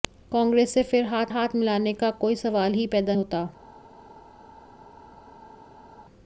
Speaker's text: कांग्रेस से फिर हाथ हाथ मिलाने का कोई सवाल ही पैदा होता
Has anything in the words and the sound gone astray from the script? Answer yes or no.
no